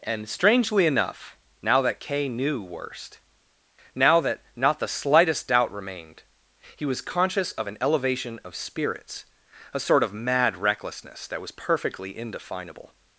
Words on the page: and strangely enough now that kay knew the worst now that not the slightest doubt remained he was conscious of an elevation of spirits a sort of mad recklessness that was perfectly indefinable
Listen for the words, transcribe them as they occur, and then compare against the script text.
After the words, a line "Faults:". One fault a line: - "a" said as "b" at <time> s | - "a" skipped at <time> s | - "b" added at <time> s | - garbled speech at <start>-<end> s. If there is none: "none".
and strangely enough now that kay knew worst now that not the slightest doubt remained he was conscious of an elevation of spirits a sort of mad recklessness that was perfectly indefinable
Faults:
- "the" skipped at 2.6 s